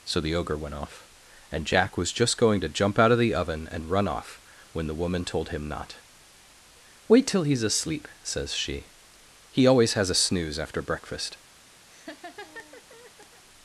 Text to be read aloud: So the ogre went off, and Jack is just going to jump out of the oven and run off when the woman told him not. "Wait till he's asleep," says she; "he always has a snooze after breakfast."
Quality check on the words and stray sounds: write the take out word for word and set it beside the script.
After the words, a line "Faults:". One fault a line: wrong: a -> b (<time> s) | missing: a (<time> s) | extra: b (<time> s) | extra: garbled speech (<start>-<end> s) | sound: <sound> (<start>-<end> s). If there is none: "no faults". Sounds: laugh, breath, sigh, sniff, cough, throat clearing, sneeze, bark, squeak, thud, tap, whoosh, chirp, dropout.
So the ogre went off, and Jack was just going to jump out of the oven and run off when the woman told him not. "Wait till he's asleep," says she; "he always has a snooze after breakfast."
Faults:
wrong: is -> was (2.0 s)
sound: laugh (11.9-13.4 s)